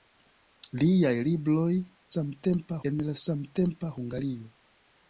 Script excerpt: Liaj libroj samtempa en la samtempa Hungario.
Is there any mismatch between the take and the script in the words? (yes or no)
no